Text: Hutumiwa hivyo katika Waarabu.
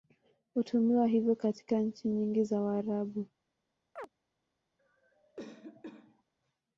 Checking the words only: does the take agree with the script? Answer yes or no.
no